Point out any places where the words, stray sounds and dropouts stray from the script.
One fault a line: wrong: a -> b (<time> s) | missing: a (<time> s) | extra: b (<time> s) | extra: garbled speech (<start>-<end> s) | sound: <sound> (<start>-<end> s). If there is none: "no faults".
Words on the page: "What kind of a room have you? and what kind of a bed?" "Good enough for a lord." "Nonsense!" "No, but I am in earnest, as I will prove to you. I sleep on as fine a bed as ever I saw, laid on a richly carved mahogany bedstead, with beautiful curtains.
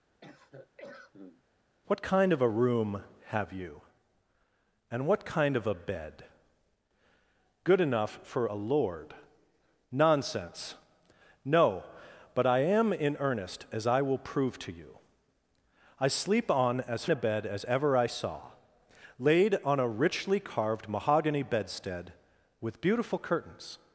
sound: cough (0.2-1.4 s)
missing: fine (17.1 s)